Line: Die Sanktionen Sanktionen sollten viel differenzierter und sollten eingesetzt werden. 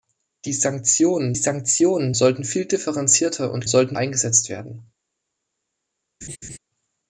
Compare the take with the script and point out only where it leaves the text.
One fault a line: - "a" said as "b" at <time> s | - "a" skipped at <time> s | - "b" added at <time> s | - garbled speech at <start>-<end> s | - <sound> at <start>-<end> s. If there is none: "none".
- laugh at 6.2-6.6 s